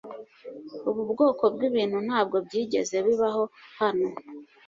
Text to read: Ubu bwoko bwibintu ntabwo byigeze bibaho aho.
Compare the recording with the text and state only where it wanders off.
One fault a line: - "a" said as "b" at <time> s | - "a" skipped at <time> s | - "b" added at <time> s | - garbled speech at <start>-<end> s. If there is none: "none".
- "aho" said as "hano" at 3.8 s